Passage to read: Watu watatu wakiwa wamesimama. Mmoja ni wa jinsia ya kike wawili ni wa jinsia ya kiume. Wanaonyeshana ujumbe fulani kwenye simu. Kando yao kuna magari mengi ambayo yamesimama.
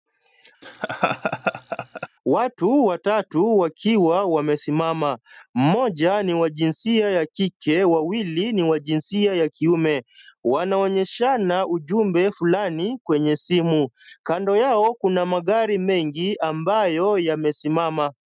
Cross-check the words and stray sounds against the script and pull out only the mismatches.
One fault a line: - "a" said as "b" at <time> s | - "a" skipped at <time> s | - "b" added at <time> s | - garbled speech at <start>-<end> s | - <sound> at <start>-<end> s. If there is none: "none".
- laugh at 0.6-2.1 s